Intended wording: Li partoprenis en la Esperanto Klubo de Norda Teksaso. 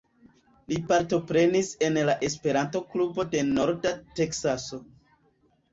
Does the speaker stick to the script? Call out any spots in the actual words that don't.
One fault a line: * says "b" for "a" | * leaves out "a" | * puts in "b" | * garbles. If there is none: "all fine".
all fine